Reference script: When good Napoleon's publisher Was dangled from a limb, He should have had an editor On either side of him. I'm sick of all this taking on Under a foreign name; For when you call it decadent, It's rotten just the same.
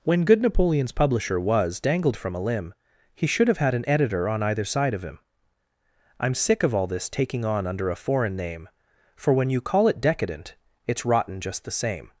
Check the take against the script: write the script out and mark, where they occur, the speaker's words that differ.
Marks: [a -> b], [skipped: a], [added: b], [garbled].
When good Napoleon's publisher Was dangled from a limb, He should have had an editor On either side of him. I'm sick of all this taking on Under a foreign name; For when you call it decadent, It's rotten just the same.